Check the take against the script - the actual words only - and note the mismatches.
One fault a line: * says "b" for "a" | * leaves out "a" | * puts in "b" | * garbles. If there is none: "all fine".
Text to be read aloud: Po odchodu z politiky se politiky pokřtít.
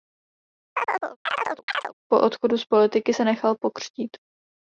* says "nechal" for "politiky"